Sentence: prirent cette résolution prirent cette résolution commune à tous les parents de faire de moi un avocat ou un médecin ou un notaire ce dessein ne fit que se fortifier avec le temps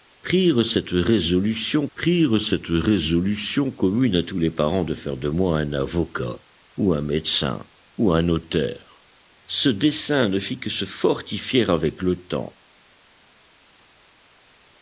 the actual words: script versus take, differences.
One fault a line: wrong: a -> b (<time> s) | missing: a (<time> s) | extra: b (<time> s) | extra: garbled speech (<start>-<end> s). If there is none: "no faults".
no faults